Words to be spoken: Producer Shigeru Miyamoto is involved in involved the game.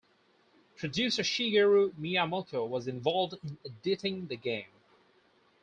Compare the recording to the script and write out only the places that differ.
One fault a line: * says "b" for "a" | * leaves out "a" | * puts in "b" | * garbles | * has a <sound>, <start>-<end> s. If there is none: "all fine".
* says "was" for "is"
* says "editing" for "involved"